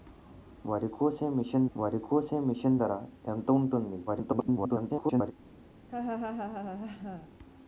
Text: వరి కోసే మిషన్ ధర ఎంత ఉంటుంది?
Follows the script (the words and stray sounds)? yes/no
no